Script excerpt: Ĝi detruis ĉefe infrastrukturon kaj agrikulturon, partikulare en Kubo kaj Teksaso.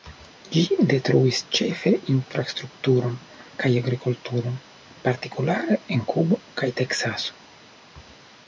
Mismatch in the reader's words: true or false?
false